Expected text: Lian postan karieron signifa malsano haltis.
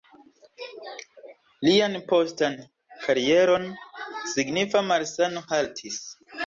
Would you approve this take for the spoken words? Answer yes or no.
yes